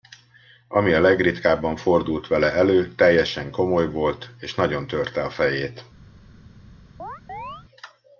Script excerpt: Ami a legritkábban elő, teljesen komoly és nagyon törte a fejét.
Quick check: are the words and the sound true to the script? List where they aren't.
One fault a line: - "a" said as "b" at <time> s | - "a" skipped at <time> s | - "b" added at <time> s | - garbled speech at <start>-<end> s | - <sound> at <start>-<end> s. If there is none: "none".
- "fordult vele" added at 1.7 s
- "volt" added at 3.9 s
- chirp at 7.0-7.7 s